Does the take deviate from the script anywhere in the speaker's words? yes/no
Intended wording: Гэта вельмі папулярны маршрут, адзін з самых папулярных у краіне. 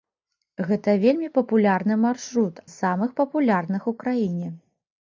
yes